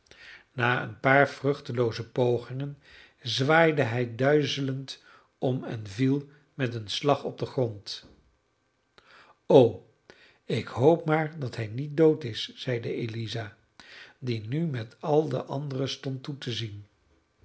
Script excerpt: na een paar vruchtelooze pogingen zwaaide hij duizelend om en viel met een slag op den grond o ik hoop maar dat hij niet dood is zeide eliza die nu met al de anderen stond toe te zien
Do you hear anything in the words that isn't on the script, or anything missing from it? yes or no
no